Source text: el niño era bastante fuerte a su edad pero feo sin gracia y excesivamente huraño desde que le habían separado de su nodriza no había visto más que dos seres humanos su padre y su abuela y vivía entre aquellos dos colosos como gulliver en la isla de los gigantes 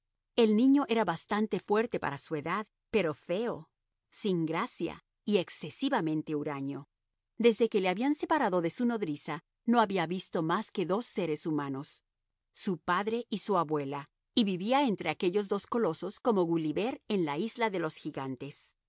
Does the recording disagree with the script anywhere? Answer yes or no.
yes